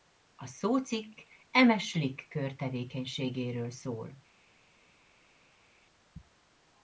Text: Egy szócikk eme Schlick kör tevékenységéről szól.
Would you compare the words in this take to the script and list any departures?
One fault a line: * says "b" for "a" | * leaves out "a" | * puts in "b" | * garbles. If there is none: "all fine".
* says "A" for "Egy"